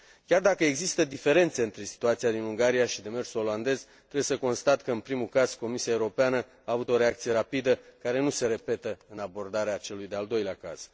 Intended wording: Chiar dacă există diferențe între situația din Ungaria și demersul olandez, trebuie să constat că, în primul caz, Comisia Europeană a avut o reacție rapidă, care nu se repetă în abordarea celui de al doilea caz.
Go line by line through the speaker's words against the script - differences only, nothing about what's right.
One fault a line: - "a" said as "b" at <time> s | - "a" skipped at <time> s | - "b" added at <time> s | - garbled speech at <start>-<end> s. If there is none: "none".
none